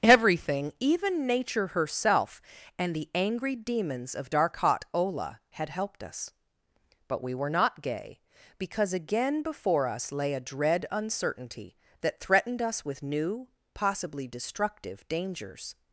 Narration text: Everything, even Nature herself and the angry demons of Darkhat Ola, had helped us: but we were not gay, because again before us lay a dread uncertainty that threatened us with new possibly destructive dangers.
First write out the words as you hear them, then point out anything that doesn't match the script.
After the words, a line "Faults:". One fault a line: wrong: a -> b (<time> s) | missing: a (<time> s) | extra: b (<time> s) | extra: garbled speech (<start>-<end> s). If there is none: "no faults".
Everything, even Nature herself and the angry demons of Darkhat Ola, had helped us: but we were not gay, because again before us lay a dread uncertainty that threatened us with new possibly destructive dangers.
Faults:
no faults